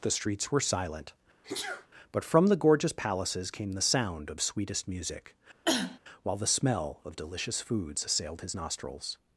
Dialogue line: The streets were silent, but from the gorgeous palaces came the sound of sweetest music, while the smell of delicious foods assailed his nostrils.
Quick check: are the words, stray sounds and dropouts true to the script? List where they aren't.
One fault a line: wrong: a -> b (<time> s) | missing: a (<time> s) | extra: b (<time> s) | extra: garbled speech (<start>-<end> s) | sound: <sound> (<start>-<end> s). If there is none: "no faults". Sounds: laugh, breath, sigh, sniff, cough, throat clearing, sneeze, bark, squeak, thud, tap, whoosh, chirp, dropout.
sound: sneeze (1.4-1.9 s)
sound: cough (5.7-6.0 s)